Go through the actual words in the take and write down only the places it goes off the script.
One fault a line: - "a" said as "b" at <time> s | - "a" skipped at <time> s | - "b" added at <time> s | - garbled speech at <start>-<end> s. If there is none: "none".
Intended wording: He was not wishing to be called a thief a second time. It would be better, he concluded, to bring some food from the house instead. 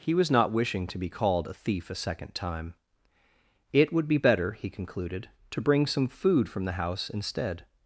none